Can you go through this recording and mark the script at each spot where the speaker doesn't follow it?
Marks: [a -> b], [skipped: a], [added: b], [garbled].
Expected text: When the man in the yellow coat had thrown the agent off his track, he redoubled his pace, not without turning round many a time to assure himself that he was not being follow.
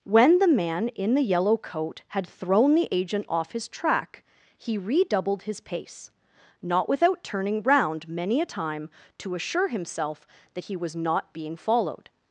When the man in the yellow coat had thrown the agent off his track, he redoubled his pace, not without turning round many a time to assure himself that he was not being [follow. -> followed]